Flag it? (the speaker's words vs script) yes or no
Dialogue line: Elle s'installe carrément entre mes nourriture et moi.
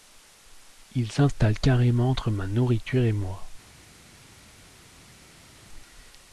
yes